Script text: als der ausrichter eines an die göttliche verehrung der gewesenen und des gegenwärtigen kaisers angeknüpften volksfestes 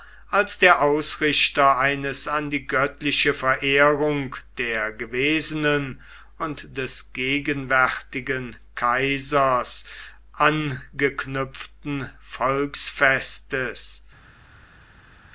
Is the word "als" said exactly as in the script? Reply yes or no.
yes